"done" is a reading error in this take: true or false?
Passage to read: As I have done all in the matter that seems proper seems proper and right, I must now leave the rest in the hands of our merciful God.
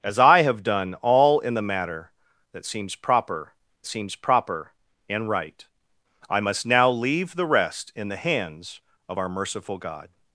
false